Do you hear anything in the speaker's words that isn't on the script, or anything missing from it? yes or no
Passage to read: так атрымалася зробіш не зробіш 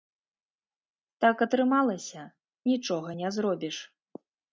yes